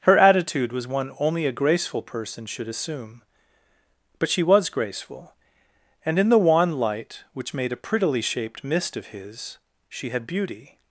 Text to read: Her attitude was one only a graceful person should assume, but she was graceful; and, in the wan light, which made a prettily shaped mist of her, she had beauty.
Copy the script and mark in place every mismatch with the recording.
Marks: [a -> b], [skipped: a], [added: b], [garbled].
Her attitude was one only a graceful person should assume, but she was graceful; and, in the wan light, which made a prettily shaped mist of [her, -> his] she had beauty.